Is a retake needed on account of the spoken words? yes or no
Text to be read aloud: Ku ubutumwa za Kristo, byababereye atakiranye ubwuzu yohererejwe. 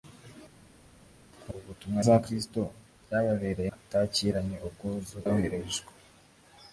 no